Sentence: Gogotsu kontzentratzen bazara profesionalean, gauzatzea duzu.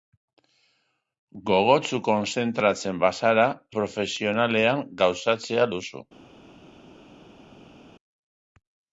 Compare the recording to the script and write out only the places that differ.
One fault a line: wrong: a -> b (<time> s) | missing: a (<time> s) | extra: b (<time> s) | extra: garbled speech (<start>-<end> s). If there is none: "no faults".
no faults